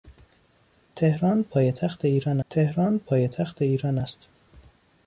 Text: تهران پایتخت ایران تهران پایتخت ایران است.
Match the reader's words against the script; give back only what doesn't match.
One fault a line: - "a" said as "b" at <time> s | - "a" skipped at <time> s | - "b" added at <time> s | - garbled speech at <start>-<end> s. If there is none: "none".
none